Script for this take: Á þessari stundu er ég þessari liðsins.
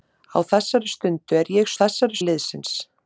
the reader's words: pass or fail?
pass